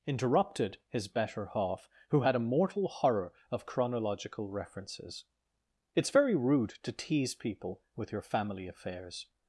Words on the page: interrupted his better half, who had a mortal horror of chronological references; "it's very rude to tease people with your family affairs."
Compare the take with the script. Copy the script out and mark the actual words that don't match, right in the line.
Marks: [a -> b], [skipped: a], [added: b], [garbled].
interrupted his better half, who had a mortal horror of chronological references; "it's very rude to tease people with your family affairs."